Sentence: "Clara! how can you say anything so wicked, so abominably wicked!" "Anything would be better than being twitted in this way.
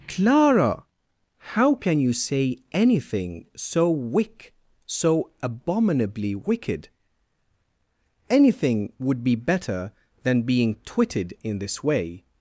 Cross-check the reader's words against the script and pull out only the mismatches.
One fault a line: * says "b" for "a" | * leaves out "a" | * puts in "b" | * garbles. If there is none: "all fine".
* says "wick" for "wicked"